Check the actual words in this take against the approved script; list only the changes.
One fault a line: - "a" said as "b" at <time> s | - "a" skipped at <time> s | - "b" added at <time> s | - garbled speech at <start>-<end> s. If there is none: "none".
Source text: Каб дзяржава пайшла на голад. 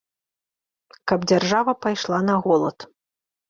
none